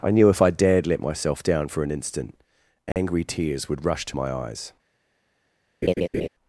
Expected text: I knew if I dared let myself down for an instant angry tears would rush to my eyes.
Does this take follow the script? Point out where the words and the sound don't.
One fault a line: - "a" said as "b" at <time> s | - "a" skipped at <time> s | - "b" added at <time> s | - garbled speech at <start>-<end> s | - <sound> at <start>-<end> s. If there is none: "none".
- dropout at 2.9-3.0 s
- laugh at 5.8-6.3 s